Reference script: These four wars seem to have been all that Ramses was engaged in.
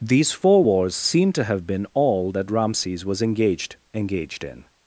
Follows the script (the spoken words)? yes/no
no